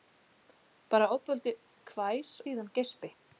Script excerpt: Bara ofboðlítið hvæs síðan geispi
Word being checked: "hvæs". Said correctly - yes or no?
yes